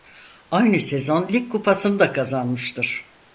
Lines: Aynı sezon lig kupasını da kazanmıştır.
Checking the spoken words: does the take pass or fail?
pass